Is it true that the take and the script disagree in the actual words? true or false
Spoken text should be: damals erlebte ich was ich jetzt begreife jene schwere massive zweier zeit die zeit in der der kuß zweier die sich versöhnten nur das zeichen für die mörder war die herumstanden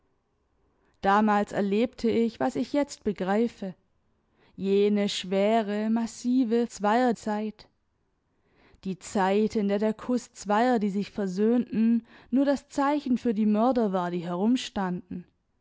false